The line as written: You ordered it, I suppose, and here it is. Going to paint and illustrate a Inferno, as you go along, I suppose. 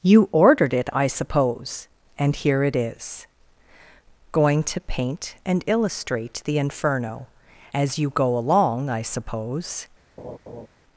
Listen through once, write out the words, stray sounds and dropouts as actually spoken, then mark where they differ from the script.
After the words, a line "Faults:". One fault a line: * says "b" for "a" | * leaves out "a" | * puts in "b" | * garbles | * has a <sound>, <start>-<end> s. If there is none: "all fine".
You ordered it, I suppose, and here it is. Going to paint and illustrate the Inferno, as you go along, I suppose.
Faults:
* says "the" for "a"
* has a laugh, 10.2-10.7 s